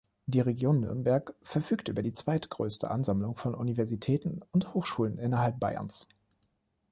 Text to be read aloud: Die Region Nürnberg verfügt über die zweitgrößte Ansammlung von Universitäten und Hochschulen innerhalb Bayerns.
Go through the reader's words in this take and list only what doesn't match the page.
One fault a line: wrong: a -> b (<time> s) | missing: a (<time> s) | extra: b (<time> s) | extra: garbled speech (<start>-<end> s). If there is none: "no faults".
no faults